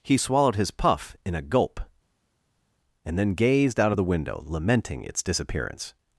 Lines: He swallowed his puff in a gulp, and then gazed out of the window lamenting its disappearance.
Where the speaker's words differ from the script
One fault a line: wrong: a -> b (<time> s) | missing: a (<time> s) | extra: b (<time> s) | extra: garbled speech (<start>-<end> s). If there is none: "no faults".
no faults